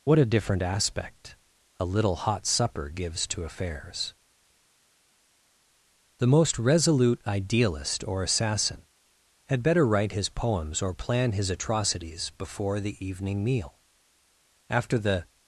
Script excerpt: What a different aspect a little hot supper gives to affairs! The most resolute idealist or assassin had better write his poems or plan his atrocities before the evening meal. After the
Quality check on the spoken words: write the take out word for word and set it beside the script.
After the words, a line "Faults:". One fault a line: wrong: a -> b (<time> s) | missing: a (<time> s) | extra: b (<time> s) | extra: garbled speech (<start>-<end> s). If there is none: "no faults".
What a different aspect a little hot supper gives to affairs! The most resolute idealist or assassin had better write his poems or plan his atrocities before the evening meal. After the
Faults:
no faults